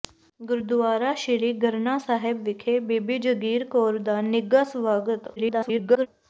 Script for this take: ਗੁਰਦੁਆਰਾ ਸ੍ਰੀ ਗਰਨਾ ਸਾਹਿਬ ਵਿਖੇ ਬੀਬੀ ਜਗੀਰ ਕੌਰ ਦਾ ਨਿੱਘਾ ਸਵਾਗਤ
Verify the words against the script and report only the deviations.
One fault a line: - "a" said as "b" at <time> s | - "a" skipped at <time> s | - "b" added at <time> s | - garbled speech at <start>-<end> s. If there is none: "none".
- garbled speech at 5.4-6.1 s